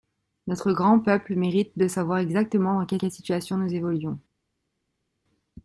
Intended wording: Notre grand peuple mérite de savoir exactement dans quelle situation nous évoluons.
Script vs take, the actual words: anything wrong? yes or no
yes